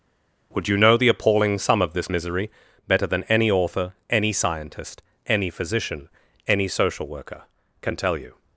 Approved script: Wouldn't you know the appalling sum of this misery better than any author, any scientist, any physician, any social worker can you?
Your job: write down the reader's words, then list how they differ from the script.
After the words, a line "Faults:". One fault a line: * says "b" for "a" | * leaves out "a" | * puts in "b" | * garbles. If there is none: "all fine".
Would you know the appalling sum of this misery better than any author, any scientist, any physician, any social worker can tell you?
Faults:
* says "Would" for "Wouldn't"
* puts in "tell"